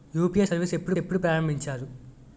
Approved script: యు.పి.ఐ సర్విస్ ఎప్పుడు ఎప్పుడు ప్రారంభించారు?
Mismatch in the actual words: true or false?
false